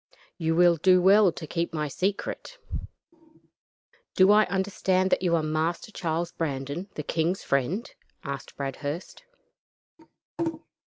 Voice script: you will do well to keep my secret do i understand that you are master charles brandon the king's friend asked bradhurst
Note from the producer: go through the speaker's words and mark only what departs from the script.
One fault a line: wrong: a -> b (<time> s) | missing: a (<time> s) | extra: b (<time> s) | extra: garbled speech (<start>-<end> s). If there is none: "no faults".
no faults